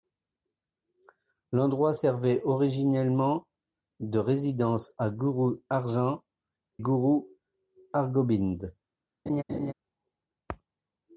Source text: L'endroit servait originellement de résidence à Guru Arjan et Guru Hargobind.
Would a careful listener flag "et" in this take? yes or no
yes